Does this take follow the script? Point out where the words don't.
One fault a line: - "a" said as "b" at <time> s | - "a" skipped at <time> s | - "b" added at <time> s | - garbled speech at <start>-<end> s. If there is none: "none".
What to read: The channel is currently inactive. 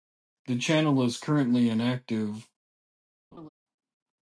none